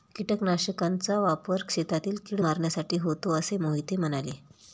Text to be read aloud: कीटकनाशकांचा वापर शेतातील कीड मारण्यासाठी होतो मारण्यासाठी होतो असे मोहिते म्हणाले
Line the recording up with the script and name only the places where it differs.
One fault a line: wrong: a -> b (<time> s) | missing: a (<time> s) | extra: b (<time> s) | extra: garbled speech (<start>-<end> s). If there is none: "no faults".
missing: मारण्यासाठी होतो (3.4 s)